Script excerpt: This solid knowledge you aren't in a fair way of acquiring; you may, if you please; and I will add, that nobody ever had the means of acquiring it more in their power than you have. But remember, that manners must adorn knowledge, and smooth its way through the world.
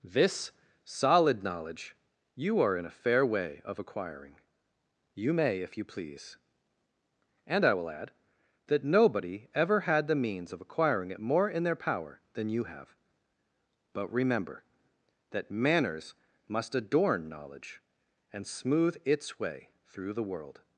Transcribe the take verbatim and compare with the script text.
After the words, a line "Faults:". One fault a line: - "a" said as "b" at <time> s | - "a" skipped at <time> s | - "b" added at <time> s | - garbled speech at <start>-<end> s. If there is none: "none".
This solid knowledge you are in a fair way of acquiring; you may, if you please; and I will add, that nobody ever had the means of acquiring it more in their power than you have. But remember, that manners must adorn knowledge, and smooth its way through the world.
Faults:
- "aren't" said as "are" at 2.6 s